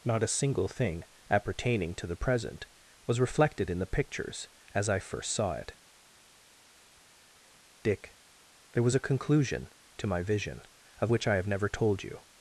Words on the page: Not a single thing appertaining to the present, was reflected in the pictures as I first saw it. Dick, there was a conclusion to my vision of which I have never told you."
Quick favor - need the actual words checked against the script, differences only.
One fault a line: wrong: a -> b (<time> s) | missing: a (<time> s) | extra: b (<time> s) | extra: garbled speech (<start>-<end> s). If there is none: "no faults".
no faults